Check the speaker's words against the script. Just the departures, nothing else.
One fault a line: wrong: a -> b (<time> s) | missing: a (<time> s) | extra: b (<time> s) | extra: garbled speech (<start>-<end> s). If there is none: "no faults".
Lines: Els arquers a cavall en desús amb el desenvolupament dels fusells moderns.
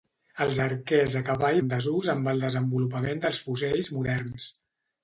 no faults